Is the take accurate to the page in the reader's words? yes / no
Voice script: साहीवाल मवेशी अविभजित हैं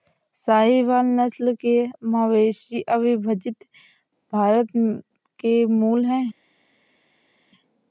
no